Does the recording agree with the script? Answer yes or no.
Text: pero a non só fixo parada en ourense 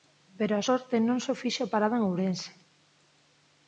no